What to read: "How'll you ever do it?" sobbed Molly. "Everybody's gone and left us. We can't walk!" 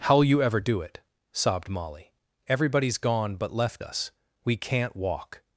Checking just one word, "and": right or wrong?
wrong